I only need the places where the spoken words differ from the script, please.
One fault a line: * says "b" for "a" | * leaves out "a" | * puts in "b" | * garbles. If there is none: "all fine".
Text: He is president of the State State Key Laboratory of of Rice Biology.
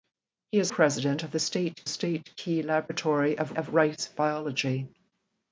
all fine